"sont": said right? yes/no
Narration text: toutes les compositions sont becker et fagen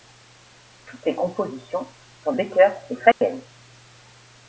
yes